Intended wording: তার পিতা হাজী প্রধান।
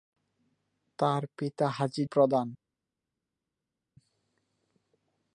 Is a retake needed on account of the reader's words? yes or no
no